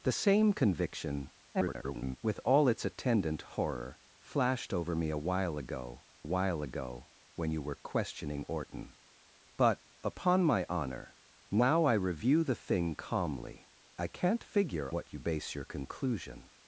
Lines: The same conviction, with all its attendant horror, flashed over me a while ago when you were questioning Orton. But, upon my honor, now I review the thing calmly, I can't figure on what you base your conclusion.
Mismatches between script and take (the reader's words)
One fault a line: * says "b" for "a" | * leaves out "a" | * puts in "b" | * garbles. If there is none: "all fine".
* garbles
* puts in "while ago"
* leaves out "on"